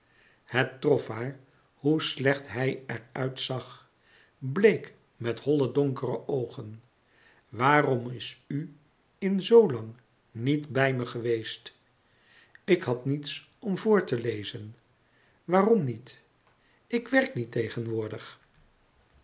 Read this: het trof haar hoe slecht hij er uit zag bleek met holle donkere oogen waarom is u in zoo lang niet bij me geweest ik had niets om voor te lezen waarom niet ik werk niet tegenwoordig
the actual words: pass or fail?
pass